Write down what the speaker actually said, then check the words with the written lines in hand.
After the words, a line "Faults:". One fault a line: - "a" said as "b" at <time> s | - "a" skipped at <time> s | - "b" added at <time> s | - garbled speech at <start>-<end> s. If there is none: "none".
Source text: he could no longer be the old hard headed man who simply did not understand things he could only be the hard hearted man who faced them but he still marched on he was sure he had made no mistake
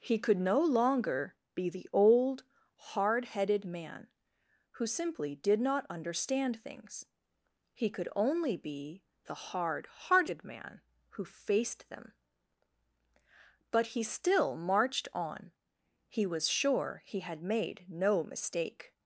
he could no longer be the old hard headed man who simply did not understand things he could only be the hard hearted man who faced them but he still marched on he was sure he had made no mistake
Faults:
none